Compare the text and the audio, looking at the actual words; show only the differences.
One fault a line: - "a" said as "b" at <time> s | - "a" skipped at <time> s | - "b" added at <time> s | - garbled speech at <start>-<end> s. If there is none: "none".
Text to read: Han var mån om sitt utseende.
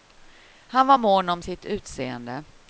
none